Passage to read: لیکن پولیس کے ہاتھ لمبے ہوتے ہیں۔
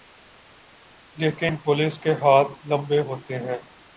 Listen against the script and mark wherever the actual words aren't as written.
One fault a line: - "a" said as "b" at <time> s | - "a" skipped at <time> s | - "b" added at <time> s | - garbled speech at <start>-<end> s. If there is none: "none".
none